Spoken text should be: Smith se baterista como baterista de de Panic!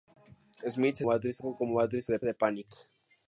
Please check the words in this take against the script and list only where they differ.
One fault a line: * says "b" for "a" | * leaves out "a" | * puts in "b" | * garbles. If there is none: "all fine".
all fine